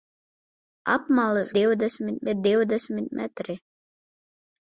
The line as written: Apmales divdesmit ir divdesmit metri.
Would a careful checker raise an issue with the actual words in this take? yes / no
no